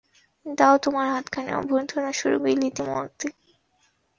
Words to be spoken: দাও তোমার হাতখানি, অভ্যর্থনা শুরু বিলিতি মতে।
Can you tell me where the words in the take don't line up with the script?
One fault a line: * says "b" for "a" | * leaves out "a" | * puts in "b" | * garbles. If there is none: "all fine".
all fine